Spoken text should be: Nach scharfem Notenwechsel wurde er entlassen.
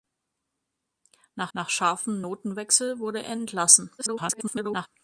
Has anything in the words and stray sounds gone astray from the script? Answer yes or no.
yes